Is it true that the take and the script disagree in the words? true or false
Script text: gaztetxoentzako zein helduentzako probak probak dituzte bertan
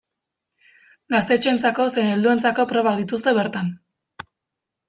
true